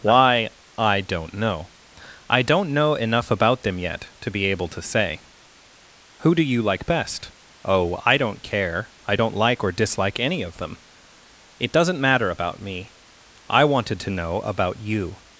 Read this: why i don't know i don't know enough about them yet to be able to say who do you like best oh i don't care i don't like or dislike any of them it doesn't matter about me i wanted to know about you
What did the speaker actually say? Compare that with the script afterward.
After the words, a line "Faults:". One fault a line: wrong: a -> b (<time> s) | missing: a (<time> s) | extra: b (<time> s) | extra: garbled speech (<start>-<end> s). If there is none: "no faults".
why i don't know i don't know enough about them yet to be able to say who do you like best oh i don't care i don't like or dislike any of them it doesn't matter about me i wanted to know about you
Faults:
no faults